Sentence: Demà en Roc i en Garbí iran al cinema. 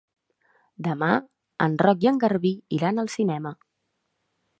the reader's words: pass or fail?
pass